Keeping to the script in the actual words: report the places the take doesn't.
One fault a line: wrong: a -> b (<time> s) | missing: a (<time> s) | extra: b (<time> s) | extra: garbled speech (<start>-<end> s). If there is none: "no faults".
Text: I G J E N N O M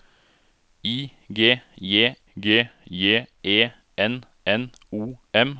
extra: G J (2.4 s)